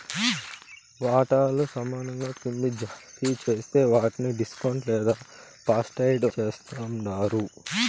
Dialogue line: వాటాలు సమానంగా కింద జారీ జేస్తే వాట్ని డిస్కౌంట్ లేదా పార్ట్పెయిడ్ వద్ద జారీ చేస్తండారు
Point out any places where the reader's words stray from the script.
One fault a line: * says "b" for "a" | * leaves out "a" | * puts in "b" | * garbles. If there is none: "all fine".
* leaves out "వద్ద జారీ"